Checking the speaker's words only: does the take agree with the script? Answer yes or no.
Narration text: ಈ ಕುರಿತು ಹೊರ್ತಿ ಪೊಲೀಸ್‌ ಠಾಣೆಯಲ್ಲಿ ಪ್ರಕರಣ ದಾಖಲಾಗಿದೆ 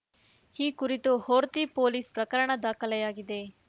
no